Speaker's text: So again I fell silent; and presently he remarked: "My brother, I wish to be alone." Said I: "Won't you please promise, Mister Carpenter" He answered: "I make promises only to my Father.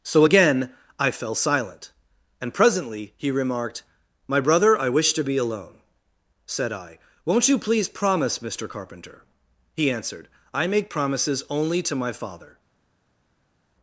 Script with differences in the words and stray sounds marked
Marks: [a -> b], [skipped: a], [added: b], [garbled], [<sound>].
So again I fell silent; and presently he remarked: "My brother, I wish to be alone." Said I: "Won't you please promise, Mister Carpenter" He answered: "I make promises only to my Father.